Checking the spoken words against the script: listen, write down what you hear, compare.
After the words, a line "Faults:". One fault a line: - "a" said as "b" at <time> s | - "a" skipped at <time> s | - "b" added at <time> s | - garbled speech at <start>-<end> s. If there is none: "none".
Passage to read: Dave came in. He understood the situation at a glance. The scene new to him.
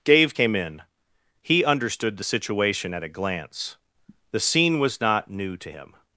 Dave came in. He understood the situation at a glance. The scene was not new to him.
Faults:
- "was not" added at 4.8 s